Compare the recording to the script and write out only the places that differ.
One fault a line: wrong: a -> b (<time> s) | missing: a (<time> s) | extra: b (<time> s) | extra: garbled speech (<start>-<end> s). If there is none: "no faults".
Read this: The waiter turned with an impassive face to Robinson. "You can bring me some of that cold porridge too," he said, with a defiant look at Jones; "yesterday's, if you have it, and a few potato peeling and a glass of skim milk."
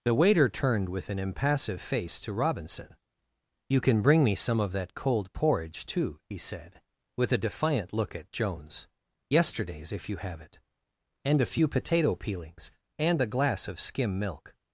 wrong: peeling -> peelings (12.2 s)